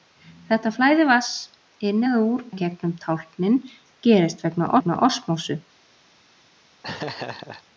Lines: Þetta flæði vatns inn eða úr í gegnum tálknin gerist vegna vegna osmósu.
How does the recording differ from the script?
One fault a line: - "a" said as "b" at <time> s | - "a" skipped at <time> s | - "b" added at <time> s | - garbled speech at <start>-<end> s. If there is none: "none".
none